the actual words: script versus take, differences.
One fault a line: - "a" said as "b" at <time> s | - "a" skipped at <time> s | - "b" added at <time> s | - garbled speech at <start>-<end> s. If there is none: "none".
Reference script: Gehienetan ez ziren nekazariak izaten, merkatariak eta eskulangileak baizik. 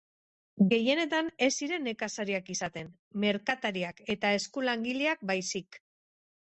none